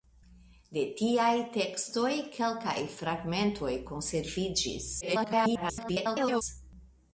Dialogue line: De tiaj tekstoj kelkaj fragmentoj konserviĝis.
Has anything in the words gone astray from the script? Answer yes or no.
yes